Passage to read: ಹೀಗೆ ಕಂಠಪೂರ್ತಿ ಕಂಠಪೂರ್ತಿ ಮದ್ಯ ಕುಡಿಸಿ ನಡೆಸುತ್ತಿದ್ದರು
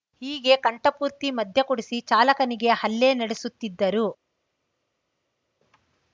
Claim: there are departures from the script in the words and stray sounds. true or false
true